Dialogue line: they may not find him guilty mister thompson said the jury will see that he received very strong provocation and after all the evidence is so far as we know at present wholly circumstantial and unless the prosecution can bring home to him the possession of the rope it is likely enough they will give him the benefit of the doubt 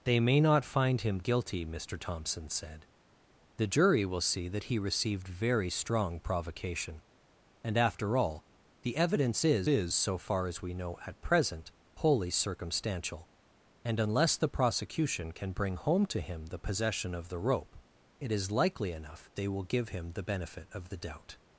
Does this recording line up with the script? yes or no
no